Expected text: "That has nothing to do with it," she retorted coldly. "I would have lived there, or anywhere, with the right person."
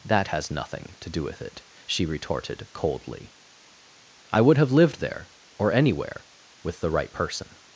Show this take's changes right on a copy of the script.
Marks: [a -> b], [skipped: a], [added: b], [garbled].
"That has nothing to do with it," she retorted coldly. "I would have lived there, or anywhere, with the right person."